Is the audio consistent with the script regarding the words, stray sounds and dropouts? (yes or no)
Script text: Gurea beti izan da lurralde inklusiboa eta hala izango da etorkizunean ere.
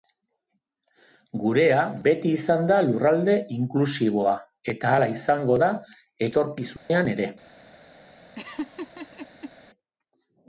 no